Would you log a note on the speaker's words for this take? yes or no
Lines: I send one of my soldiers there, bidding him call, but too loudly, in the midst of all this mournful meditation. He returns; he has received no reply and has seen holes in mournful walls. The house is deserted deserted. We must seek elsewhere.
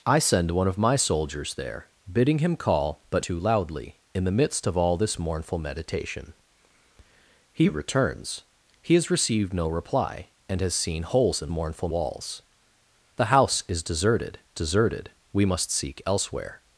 no